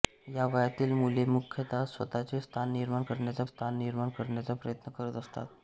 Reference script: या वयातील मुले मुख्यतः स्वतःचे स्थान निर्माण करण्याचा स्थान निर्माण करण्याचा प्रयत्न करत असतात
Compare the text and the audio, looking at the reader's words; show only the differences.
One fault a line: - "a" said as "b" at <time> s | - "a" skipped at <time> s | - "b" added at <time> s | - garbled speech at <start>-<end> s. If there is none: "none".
none